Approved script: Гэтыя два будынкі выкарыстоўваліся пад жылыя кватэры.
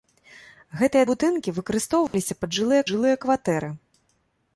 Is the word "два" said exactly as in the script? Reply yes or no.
no